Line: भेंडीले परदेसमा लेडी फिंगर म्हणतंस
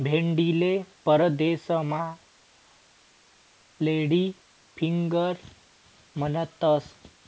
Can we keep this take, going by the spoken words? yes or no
yes